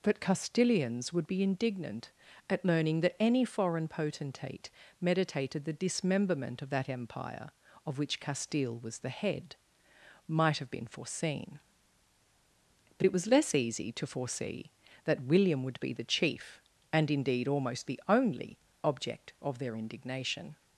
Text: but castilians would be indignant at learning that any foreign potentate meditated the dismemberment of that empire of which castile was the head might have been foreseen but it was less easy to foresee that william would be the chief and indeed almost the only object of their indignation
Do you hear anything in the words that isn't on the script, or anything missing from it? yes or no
no